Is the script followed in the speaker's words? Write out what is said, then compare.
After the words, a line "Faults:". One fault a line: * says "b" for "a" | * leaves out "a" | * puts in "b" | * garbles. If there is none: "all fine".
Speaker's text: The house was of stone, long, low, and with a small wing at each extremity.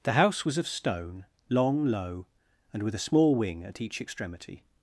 The house was of stone, long, low, and with a small wing at each extremity.
Faults:
all fine